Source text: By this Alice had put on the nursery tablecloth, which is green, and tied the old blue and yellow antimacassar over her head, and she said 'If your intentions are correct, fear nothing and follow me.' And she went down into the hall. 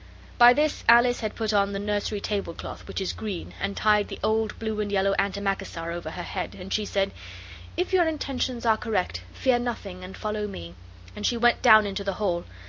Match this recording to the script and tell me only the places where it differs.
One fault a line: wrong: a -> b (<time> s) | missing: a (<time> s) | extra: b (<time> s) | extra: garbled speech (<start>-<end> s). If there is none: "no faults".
no faults